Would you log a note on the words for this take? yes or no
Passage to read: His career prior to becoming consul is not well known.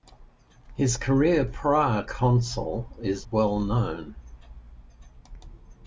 yes